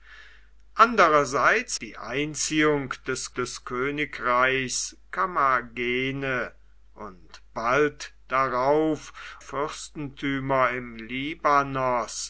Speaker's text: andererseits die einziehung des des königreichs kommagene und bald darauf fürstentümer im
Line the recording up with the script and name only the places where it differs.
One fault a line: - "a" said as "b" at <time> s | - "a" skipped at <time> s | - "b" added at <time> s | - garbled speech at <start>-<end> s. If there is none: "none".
none